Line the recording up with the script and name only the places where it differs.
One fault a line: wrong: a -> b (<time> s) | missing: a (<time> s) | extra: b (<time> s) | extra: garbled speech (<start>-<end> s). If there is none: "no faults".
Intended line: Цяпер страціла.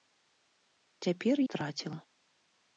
no faults